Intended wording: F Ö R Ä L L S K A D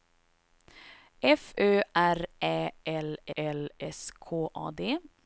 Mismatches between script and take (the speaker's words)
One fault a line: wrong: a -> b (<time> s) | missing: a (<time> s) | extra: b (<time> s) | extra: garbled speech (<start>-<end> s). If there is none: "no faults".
no faults